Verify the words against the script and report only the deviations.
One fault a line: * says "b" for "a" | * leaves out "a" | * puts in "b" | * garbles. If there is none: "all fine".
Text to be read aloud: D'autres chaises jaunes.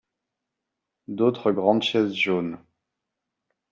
* puts in "grandes"